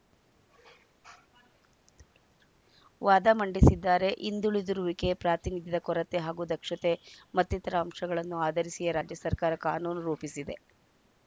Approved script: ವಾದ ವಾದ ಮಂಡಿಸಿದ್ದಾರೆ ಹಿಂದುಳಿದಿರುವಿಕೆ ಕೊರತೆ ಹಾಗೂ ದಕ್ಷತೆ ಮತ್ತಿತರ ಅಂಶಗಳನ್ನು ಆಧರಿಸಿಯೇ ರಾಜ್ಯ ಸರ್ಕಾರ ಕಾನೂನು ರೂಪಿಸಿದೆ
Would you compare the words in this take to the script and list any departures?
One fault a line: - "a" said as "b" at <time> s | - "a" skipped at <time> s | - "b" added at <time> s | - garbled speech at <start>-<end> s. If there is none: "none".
- "ವಾದ" skipped at 3.3 s
- "ಪ್ರಾತಿನಿಧ್ಯದ" added at 5.2 s